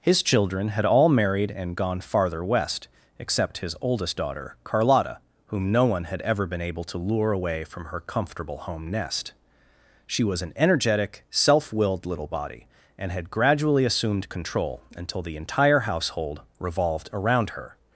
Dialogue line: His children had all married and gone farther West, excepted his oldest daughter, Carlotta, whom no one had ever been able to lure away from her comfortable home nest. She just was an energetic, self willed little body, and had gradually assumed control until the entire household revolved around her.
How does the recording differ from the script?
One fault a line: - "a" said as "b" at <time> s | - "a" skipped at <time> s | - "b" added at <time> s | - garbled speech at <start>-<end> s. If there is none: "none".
- "excepted" said as "except" at 3.2 s
- "just" skipped at 10.2 s